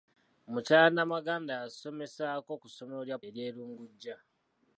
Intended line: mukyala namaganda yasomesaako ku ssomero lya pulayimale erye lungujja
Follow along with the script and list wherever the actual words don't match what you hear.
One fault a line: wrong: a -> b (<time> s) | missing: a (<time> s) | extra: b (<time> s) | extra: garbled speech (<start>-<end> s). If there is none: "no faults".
missing: pulayimale (3.2 s)